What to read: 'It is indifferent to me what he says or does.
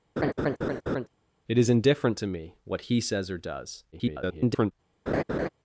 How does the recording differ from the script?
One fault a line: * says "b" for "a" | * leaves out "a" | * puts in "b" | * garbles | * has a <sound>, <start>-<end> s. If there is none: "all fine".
* has a laugh, 0.2-1.1 s
* garbles
* has a laugh, 5.1-5.5 s